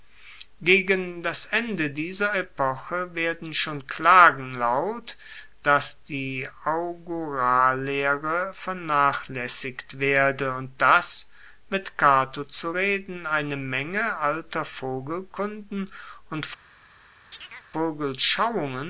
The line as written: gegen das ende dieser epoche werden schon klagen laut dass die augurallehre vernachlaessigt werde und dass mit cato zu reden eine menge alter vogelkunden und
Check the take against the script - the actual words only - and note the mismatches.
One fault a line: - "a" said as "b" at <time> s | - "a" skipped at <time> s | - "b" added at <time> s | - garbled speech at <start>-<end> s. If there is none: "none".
none